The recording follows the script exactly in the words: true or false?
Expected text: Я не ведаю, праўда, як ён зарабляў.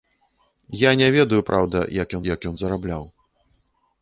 false